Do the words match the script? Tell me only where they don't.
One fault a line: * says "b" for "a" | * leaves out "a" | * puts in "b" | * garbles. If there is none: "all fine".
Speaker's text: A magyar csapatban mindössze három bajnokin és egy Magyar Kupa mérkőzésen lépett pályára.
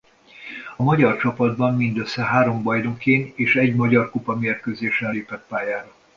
all fine